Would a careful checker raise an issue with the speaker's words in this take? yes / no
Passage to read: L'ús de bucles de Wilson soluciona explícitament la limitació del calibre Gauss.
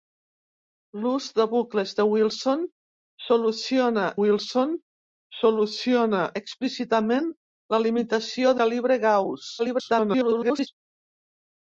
yes